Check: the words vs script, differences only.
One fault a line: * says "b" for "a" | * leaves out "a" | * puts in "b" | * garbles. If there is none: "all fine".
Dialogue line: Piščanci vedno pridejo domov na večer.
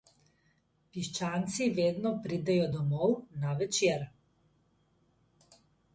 all fine